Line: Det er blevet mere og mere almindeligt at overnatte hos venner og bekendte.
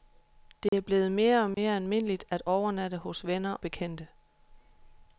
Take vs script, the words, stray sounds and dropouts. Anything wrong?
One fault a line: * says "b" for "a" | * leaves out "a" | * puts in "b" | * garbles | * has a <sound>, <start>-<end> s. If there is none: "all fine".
* has a dropout, 0.7-0.7 s
* has a dropout, 1.5-1.6 s
* leaves out "og"